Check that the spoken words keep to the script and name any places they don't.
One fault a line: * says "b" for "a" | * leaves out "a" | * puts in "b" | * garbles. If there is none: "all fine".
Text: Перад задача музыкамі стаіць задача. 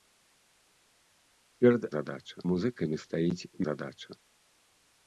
all fine